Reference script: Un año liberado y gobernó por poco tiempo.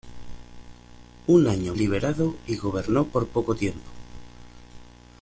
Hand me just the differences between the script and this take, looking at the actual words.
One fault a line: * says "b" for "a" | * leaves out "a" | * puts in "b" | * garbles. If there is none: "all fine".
all fine